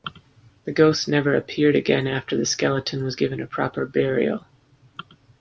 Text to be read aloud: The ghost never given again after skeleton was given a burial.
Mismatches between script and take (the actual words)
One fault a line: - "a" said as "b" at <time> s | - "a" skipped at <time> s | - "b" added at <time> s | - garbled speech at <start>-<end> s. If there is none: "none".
- "given" said as "appeared" at 1.4 s
- "the" added at 2.4 s
- "proper" added at 3.5 s